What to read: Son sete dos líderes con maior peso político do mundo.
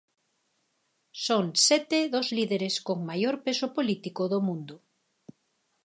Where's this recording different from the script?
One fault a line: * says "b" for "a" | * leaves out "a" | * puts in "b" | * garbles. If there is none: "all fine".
all fine